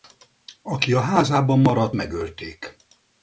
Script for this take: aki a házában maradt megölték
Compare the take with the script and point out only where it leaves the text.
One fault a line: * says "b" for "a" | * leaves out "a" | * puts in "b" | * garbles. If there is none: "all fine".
all fine